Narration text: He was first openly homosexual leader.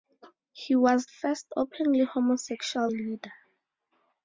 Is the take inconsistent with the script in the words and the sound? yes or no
no